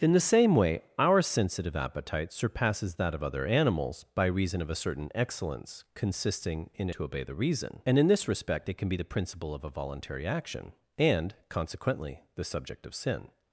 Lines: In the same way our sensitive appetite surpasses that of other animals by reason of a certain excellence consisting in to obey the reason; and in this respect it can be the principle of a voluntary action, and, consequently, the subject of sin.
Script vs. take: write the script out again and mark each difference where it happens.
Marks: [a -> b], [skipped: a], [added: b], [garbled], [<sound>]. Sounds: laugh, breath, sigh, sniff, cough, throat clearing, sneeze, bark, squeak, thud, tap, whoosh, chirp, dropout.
In the same way our sensitive appetite surpasses that of other animals by reason of a certain excellence consisting in to obey the reason; and in this respect it can be the principle of a voluntary action, and, consequently, the subject of sin.